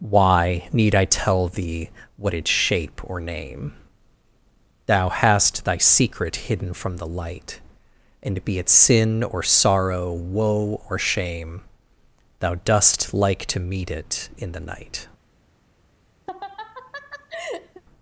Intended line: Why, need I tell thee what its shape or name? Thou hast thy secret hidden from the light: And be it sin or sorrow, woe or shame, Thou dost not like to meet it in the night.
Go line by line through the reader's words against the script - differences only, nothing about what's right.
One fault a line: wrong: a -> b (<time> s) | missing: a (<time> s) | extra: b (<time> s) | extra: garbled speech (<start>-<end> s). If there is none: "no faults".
missing: not (13.1 s)